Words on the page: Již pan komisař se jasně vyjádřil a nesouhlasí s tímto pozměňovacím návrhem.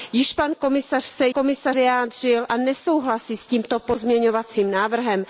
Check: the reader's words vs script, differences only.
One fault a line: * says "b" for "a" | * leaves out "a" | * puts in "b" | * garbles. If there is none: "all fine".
* says "komisař" for "jasně"